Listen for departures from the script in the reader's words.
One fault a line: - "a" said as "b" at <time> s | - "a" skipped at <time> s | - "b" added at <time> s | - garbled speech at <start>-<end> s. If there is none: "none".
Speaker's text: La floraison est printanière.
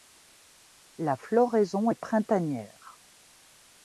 none